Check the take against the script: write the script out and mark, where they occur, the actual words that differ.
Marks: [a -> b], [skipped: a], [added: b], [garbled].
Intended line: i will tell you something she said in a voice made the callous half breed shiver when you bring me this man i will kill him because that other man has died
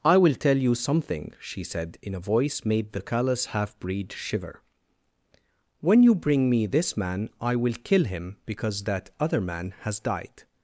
i will tell you something she said in a voice made the callous half breed shiver when you bring me this man i will kill him because that other man has died